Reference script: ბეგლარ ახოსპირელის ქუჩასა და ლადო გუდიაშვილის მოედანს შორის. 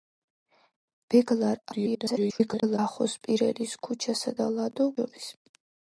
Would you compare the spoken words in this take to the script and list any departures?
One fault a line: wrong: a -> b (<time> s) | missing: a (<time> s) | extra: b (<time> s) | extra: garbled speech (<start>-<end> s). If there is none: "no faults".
extra: garbled speech (1.7-2.8 s)
missing: გუდიაშვილის მოედანს (4.9 s)